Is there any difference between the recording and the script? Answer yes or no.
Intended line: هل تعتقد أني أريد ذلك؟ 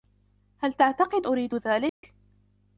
yes